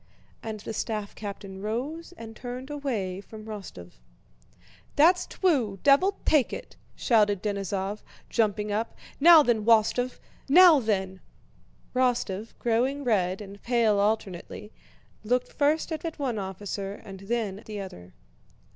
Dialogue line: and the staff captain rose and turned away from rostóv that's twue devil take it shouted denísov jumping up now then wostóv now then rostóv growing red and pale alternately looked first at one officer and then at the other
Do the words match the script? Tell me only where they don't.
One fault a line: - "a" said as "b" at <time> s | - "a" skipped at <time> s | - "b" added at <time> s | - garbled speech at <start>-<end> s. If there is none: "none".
- "at" added at 16.0 s
- "at" skipped at 17.6 s